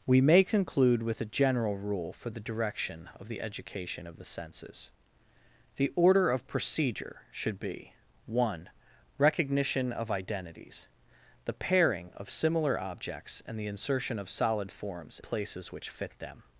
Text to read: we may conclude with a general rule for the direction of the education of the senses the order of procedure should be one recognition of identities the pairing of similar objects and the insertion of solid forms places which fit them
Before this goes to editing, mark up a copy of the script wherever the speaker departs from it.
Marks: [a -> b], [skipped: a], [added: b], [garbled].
we may conclude with a general rule for the direction of the education of the senses the order of procedure should be one recognition of identities the pairing of similar objects and the insertion of solid forms places which fit them